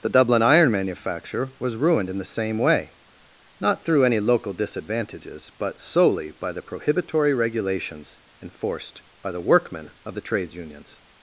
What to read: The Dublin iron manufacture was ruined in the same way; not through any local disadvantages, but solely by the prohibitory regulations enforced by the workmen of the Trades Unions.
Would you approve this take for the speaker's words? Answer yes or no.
yes